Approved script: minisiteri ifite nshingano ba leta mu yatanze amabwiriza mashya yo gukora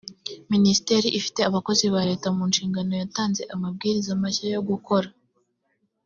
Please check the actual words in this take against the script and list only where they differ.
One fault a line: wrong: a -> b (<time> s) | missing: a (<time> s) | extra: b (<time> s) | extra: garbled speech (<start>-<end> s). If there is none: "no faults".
wrong: nshingano -> abakozi (1.5 s)
extra: nshingano (2.5 s)